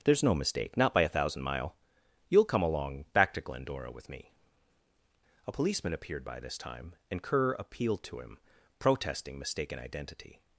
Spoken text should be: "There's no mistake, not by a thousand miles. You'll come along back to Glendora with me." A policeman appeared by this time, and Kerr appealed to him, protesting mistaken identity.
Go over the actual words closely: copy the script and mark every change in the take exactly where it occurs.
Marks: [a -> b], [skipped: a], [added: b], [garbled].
"There's no mistake, not by a thousand [miles. -> mile] You'll come along back to Glendora with me." A policeman appeared by this time, and Kerr appealed to him, protesting mistaken identity.